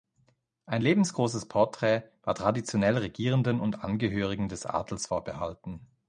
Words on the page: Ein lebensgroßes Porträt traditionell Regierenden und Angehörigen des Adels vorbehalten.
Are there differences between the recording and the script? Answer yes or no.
yes